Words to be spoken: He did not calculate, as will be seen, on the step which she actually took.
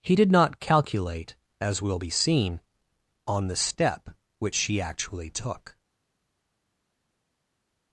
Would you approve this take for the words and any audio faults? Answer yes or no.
yes